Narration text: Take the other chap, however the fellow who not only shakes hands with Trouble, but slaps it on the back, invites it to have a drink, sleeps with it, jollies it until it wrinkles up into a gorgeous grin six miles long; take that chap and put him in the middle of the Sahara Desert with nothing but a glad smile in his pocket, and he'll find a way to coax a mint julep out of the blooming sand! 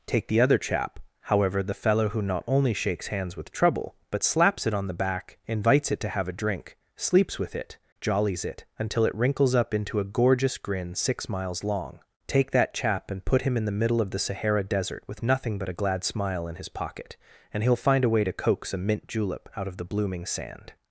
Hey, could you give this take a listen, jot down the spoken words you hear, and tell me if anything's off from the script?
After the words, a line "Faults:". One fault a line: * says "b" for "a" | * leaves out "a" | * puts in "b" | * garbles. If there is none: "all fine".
Take the other chap, however the fellow who not only shakes hands with Trouble, but slaps it on the back, invites it to have a drink, sleeps with it, jollies it until it wrinkles up into a gorgeous grin six miles long; take that chap and put him in the middle of the Sahara Desert with nothing but a glad smile in his pocket, and he'll find a way to coax a mint julep out of the blooming sand!
Faults:
all fine